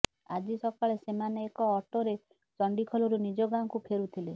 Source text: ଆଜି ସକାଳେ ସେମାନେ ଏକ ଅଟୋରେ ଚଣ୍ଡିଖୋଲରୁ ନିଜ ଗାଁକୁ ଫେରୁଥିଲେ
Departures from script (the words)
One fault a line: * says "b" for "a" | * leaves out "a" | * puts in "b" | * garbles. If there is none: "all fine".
all fine